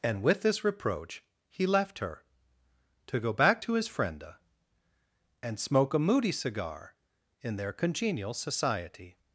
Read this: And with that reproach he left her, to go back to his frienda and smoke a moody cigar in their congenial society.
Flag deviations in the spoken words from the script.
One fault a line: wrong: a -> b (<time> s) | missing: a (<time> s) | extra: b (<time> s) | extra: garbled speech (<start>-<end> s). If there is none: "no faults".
wrong: that -> this (0.4 s)